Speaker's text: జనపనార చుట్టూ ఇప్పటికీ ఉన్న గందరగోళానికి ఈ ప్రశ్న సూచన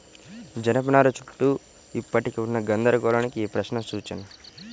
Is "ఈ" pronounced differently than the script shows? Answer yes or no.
no